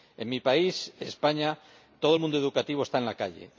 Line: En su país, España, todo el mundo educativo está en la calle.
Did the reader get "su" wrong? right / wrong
wrong